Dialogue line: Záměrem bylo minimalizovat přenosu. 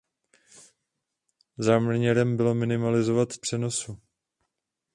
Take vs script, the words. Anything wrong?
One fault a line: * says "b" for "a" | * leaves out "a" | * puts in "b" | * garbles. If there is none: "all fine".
all fine